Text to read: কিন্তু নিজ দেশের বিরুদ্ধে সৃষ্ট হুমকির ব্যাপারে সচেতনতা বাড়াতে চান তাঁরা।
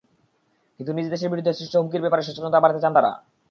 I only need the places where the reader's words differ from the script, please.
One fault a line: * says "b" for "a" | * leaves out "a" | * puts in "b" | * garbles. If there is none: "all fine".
all fine